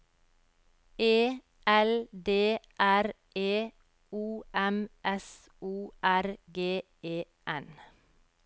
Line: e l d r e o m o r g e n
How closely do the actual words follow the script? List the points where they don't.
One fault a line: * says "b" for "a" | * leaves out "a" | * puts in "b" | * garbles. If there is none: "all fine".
* puts in "s"